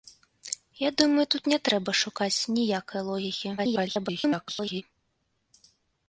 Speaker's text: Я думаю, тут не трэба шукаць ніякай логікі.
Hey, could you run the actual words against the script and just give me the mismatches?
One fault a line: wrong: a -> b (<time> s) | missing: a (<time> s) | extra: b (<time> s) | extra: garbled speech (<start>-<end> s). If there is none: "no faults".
extra: garbled speech (3.6-4.8 s)